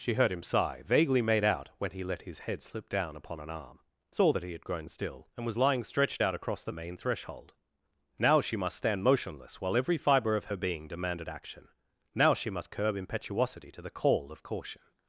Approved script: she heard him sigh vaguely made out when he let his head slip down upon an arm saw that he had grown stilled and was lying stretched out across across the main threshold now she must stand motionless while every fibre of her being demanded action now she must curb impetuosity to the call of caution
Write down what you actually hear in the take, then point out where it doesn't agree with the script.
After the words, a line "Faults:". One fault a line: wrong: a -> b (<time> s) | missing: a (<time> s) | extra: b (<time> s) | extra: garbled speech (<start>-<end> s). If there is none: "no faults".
she heard him sigh vaguely made out when he let his head slip down upon an arm saw that he had grown still and was lying stretched out across the main threshold now she must stand motionless while every fibre of her being demanded action now she must curb impetuosity to the call of caution
Faults:
wrong: stilled -> still (4.9 s)
missing: across (6.6 s)